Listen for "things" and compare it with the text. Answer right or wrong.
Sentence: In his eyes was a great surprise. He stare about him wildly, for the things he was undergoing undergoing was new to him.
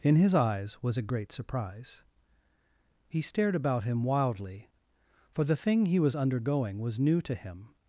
wrong